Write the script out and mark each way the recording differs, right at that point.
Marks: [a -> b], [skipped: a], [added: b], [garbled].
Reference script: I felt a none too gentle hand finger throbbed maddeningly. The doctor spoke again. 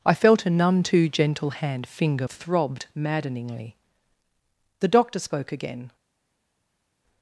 I felt a none too gentle hand finger throbbed maddeningly. The doctor spoke again.